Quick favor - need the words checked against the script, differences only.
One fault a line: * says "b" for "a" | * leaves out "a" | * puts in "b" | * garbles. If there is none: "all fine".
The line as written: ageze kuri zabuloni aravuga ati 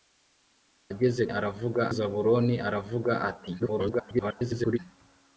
* says "aravuga" for "kuri"
* garbles